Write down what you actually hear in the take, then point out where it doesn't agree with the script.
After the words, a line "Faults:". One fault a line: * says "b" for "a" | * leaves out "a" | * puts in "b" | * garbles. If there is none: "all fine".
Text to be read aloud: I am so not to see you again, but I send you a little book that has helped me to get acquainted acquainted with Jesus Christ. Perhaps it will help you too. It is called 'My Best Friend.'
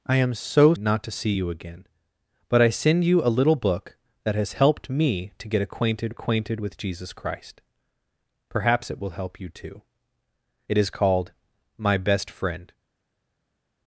I am so not to see you again, but I send you a little book that has helped me to get acquainted acquainted with Jesus Christ. Perhaps it will help you too. It is called 'My Best Friend.'
Faults:
all fine